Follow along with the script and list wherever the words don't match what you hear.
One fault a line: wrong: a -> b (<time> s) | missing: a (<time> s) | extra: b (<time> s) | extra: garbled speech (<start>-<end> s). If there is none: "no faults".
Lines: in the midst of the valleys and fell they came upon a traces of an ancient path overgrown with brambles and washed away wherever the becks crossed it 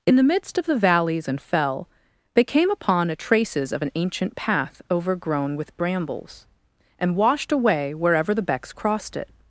no faults